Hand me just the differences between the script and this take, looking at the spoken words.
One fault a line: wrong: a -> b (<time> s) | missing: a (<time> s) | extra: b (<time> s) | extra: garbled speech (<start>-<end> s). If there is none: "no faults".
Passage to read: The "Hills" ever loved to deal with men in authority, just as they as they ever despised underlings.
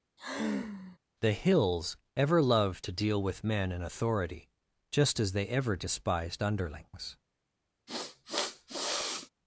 missing: as they (5.5 s)